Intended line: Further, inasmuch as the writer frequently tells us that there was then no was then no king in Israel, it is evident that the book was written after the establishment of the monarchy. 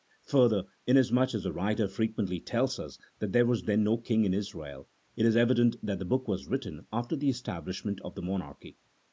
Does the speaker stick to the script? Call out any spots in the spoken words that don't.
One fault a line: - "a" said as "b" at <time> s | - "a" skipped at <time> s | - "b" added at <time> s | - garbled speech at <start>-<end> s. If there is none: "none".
- "was then no" skipped at 4.0 s